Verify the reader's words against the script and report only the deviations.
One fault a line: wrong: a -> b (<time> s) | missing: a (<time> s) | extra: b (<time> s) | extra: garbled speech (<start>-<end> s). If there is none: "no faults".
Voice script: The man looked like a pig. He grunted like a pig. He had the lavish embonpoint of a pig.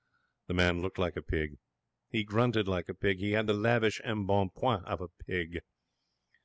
no faults